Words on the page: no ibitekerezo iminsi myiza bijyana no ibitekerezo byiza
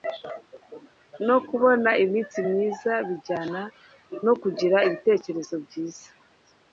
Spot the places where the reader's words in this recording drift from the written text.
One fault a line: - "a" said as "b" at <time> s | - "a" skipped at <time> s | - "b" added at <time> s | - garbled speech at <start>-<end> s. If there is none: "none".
- "ibitekerezo" said as "kubona" at 1.5 s
- "kugira" added at 4.4 s